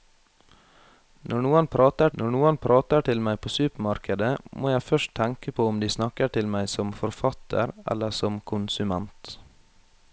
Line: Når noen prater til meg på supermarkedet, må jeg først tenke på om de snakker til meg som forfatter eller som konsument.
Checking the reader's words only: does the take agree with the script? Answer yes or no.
no